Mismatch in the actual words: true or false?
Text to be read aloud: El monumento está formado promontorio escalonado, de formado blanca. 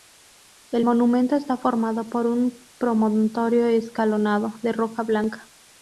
true